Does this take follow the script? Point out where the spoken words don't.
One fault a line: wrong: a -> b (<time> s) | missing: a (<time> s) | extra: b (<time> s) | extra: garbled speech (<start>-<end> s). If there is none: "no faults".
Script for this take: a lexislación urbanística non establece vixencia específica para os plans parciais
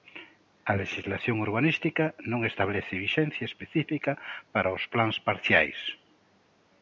no faults